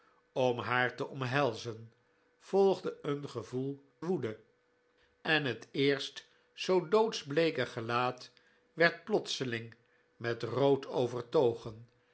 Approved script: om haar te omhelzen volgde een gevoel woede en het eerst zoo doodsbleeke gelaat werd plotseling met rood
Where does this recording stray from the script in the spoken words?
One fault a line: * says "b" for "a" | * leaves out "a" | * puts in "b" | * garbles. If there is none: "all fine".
all fine